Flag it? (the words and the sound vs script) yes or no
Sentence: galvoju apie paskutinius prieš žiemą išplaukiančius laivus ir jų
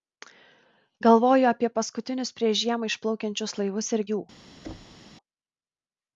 yes